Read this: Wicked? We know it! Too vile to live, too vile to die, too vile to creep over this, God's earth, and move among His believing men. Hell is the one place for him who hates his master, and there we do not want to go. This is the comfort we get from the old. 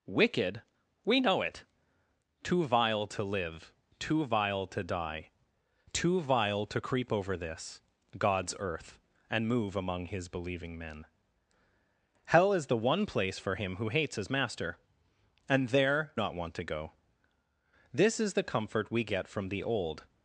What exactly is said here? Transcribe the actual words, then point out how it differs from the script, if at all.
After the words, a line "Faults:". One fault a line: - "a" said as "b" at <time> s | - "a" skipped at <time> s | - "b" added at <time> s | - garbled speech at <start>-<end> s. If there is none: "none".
Wicked? We know it! Too vile to live, too vile to die, too vile to creep over this, God's earth, and move among His believing men. Hell is the one place for him who hates his master, and there not want to go. This is the comfort we get from the old.
Faults:
- "we do" skipped at 16.1 s